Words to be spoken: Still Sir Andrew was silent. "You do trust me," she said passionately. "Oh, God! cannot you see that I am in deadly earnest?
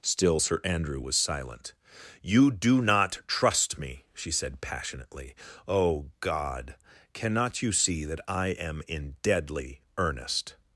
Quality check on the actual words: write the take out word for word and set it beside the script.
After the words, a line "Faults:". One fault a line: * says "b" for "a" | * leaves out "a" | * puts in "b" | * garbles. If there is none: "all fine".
Still Sir Andrew was silent. "You do not trust me," she said passionately. "Oh, God! cannot you see that I am in deadly earnest?
Faults:
* puts in "not"